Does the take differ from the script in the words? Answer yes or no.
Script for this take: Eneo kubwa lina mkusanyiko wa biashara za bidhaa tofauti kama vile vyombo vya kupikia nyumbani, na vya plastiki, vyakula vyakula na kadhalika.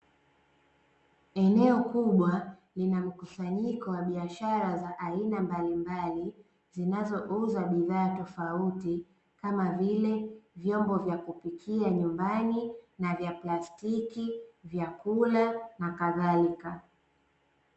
yes